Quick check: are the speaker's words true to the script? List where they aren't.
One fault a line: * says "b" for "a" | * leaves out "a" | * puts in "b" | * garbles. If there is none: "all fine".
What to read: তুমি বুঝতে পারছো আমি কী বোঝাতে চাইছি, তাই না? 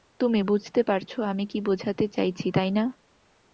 all fine